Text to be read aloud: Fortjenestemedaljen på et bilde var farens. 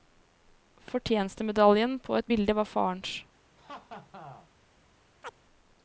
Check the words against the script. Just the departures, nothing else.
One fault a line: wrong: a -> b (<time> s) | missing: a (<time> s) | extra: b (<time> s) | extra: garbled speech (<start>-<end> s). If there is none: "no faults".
no faults